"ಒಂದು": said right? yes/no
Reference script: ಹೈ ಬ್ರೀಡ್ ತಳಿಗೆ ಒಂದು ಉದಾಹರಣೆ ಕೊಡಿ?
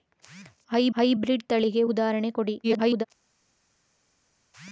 no